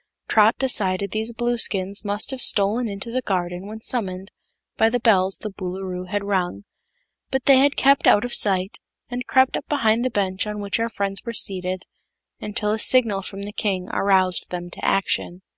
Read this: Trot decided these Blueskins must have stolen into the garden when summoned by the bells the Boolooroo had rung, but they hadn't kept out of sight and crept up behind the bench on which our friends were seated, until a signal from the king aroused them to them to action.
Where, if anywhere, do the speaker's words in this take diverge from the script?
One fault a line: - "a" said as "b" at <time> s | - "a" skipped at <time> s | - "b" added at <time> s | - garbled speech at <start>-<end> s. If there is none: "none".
- "hadn't" said as "had" at 7.6 s
- "them to" skipped at 14.8 s